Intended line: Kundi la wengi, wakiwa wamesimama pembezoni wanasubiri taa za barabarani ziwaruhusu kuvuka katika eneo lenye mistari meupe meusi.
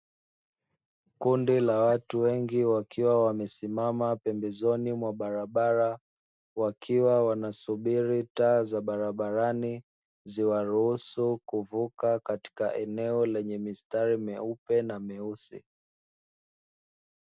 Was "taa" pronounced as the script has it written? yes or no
yes